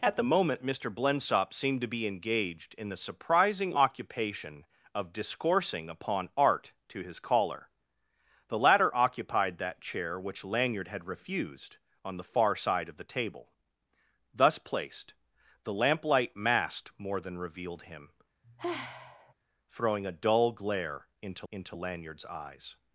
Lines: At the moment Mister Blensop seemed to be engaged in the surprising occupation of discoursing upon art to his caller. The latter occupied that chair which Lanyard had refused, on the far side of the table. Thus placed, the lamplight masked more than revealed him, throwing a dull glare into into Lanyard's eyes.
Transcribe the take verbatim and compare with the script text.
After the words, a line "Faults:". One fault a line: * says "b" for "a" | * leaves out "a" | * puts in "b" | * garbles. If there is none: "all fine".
At the moment Mister Blensop seemed to be engaged in the surprising occupation of discoursing upon art to his caller. The latter occupied that chair which Lanyard had refused, on the far side of the table. Thus placed, the lamplight masked more than revealed him, throwing a dull glare into into Lanyard's eyes.
Faults:
all fine